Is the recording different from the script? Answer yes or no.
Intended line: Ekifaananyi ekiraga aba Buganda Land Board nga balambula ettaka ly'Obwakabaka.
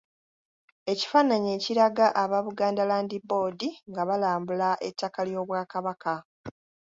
no